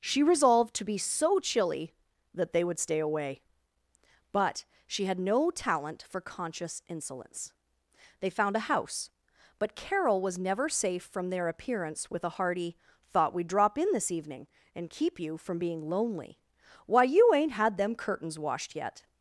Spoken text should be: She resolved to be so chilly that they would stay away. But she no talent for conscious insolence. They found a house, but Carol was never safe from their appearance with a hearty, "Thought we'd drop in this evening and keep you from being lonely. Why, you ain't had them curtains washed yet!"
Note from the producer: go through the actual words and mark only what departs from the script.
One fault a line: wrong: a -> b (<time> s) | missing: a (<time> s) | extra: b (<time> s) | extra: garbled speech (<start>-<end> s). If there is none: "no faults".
extra: had (5.0 s)